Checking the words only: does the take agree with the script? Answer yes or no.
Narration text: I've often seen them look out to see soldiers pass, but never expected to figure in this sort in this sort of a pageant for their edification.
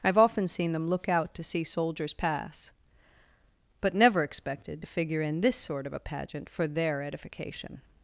no